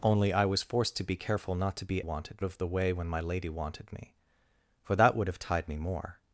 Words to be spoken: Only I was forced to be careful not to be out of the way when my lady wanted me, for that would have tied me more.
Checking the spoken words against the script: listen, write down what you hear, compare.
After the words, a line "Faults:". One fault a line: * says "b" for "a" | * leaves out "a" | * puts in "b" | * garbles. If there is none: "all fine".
Only I was forced to be careful not to be wanted of the way when my lady wanted me, for that would have tied me more.
Faults:
* says "wanted" for "out"